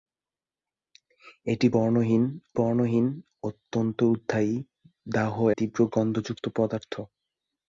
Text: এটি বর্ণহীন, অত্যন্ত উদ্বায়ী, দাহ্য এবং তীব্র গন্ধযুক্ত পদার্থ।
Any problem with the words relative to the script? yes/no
yes